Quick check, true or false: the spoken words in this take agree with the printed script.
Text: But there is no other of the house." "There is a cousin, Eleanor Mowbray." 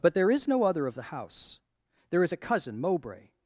false